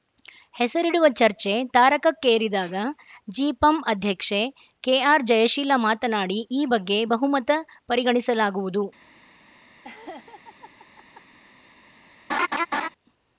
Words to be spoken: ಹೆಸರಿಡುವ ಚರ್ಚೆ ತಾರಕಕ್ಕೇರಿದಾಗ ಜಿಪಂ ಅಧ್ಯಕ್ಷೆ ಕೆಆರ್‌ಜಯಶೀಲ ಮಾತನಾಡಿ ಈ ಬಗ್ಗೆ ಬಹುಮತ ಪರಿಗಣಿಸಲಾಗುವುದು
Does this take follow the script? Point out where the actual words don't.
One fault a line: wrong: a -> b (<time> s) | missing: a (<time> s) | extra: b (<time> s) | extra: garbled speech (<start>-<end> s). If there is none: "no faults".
no faults